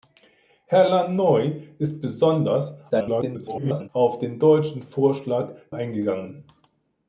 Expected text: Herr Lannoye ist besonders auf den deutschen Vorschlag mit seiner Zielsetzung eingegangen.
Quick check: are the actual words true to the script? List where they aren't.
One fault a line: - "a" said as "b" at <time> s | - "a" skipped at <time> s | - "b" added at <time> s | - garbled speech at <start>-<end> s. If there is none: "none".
- garbled speech at 2.9-3.9 s
- "mit seiner Zielsetzung" skipped at 5.5 s